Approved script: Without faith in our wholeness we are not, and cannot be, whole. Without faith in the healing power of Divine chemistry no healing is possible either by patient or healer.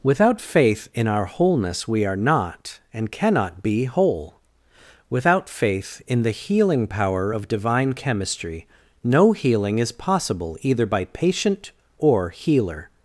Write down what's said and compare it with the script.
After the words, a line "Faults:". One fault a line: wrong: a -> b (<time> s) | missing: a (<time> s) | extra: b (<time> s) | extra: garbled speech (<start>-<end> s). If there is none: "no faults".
Without faith in our wholeness we are not, and cannot be, whole. Without faith in the healing power of Divine chemistry no healing is possible either by patient or healer.
Faults:
no faults